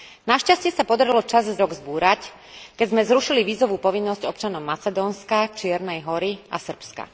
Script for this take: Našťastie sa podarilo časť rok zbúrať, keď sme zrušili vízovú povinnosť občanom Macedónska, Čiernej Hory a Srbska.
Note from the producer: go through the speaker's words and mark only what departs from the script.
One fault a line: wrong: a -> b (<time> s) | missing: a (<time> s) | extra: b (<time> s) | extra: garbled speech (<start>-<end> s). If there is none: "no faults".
no faults